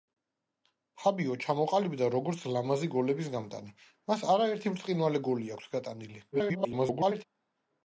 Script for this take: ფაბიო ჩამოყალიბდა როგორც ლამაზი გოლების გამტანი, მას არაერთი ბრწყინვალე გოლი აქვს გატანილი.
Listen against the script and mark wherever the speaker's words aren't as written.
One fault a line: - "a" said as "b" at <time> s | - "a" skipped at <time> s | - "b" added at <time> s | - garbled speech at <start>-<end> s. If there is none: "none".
- garbled speech at 6.3-7.2 s